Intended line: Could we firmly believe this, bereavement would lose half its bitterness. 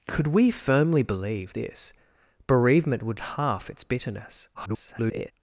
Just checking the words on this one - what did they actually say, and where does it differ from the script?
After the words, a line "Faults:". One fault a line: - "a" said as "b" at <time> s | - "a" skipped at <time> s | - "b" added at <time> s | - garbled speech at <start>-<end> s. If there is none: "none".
Could we firmly believe this, bereavement would half its bitterness. [garbled]
Faults:
- "lose" skipped at 3.2 s
- garbled speech at 4.5-5.3 s